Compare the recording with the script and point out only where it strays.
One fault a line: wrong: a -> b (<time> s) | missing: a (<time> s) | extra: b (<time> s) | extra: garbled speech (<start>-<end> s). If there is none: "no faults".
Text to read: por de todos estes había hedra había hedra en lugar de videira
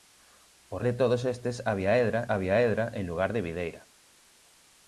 no faults